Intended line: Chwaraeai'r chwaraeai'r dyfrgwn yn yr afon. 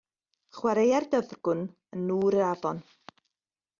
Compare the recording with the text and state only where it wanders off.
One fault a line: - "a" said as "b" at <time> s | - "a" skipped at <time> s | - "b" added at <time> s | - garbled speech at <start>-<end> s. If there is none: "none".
- "chwaraeai'r" skipped at 1.1 s
- "nŵr" added at 2.1 s